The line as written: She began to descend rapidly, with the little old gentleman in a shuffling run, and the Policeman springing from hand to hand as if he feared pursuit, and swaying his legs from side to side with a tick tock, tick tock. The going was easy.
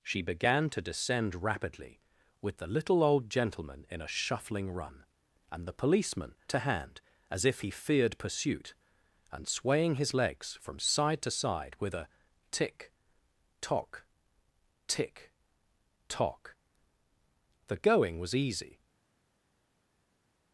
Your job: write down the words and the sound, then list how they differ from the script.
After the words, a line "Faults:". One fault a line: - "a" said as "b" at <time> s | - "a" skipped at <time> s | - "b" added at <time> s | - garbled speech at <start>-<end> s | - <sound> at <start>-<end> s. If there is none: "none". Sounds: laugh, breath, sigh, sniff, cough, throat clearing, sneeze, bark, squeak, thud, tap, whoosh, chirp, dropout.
She began to descend rapidly, with the little old gentleman in a shuffling run, and the Policeman to hand as if he feared pursuit, and swaying his legs from side to side with a tick tock, tick tock. The going was easy.
Faults:
- "springing from hand" skipped at 6.3 s